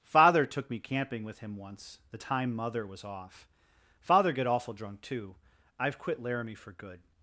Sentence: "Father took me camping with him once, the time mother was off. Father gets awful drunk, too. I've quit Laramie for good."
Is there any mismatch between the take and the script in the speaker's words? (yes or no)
yes